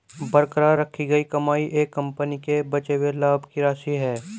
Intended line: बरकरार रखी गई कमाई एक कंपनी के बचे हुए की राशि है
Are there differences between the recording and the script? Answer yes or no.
yes